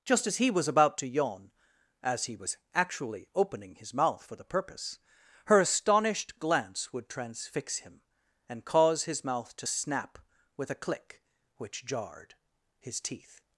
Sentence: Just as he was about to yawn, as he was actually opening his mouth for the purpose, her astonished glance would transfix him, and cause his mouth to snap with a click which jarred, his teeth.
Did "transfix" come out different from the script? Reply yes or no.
no